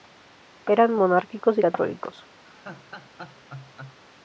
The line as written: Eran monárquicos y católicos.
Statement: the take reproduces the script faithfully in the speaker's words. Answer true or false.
true